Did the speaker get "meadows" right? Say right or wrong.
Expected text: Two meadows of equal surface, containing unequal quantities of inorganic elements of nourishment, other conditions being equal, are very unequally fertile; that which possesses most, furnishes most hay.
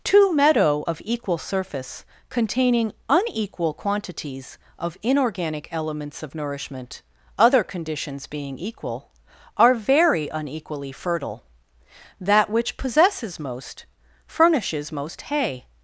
wrong